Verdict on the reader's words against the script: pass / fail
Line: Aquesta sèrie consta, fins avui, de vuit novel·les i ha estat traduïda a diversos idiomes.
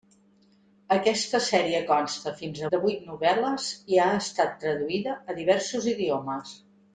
fail